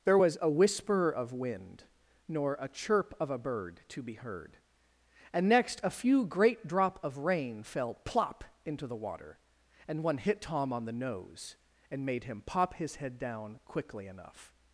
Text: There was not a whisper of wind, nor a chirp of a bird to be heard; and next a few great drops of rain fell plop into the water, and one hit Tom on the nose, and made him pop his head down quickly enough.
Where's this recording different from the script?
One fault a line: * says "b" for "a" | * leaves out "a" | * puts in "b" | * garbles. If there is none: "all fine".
* leaves out "not"
* says "drop" for "drops"